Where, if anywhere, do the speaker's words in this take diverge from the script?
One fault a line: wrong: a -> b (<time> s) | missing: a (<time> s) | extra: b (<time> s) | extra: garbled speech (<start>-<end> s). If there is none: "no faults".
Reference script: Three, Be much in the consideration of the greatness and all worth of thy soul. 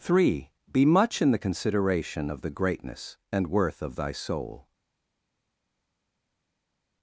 missing: all (3.5 s)